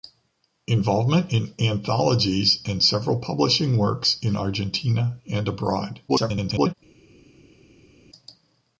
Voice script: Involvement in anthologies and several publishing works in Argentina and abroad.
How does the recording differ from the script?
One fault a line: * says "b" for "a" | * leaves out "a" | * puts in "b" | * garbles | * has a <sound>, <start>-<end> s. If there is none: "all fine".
* garbles